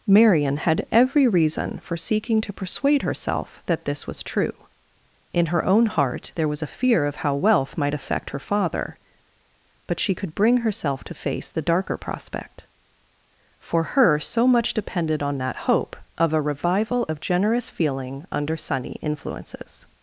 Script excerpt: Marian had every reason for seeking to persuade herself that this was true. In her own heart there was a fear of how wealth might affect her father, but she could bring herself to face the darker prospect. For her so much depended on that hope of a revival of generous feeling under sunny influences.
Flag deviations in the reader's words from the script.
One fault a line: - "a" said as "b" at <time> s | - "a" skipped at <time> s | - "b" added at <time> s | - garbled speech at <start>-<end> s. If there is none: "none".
none